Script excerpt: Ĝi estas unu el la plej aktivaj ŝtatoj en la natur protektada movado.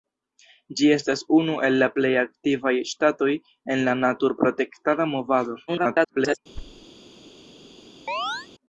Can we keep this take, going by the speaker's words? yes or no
no